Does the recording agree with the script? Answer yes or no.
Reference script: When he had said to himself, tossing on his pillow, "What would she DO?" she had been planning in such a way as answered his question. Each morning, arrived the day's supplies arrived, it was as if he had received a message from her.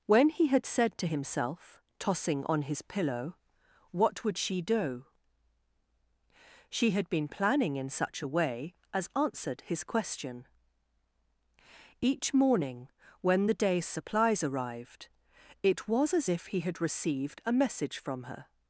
no